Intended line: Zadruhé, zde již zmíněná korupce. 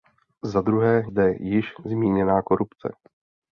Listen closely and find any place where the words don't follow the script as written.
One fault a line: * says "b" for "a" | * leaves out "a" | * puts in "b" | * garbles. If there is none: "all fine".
all fine